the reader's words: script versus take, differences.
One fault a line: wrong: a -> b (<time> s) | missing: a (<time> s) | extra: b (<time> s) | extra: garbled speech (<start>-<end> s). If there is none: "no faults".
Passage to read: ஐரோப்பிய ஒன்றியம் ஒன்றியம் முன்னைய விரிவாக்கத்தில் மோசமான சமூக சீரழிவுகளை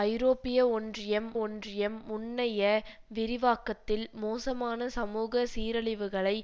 no faults